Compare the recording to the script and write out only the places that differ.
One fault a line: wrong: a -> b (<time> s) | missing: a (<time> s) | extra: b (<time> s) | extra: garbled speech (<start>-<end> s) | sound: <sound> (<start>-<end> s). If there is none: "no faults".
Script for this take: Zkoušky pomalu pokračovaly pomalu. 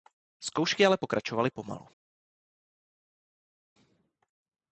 wrong: pomalu -> ale (0.8 s)